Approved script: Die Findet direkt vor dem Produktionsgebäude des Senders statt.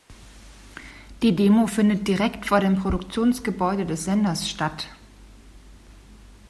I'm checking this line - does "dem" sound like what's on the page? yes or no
yes